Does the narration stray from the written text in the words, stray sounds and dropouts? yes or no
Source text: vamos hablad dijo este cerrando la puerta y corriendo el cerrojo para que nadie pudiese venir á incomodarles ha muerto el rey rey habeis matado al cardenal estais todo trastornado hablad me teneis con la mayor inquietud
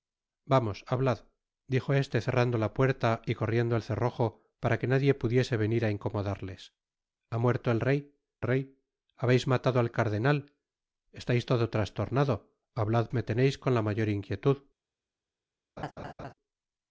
yes